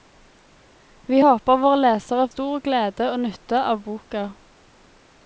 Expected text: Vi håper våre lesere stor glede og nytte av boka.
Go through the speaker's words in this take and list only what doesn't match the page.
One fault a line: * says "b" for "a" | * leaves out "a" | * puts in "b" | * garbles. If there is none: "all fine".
all fine